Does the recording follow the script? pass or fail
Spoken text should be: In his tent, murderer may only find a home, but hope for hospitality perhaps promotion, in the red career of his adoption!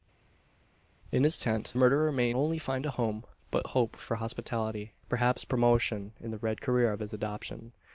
pass